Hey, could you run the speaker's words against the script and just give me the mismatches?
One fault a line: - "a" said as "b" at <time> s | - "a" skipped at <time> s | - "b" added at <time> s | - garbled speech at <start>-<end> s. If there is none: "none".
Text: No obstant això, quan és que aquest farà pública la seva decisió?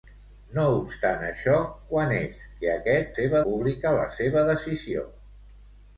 - "farà" said as "seva" at 3.2 s